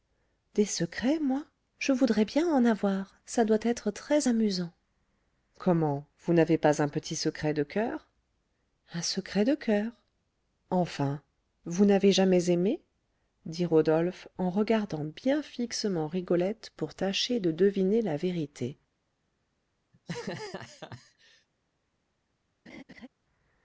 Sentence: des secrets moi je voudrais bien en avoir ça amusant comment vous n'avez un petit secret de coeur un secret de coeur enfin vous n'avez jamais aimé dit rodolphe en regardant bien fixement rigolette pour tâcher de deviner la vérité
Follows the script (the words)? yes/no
no